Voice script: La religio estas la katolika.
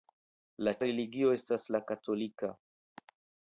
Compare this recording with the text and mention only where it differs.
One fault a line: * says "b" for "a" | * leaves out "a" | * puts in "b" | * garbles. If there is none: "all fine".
all fine